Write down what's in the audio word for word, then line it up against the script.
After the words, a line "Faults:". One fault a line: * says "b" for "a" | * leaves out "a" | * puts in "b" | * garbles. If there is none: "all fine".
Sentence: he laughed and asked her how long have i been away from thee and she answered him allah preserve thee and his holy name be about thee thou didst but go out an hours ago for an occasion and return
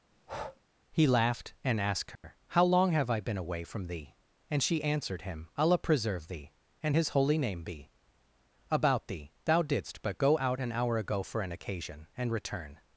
he laughed and asked her how long have i been away from thee and she answered him allah preserve thee and his holy name be about thee thou didst but go out an hour ago for an occasion and return
Faults:
* says "hour" for "hours"